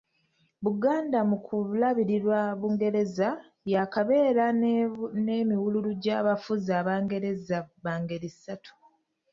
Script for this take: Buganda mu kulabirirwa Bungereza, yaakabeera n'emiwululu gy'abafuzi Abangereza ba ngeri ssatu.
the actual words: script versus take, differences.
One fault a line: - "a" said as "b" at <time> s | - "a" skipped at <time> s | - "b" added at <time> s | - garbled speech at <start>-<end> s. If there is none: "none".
none